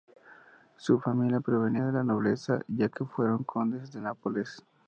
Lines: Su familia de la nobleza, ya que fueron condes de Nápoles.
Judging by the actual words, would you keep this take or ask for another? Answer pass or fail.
fail